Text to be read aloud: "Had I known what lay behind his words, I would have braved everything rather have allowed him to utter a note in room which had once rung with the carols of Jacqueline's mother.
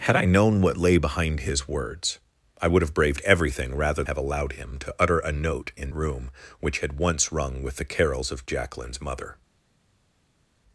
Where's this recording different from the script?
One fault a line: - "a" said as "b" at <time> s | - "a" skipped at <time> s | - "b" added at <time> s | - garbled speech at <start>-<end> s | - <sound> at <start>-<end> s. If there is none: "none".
none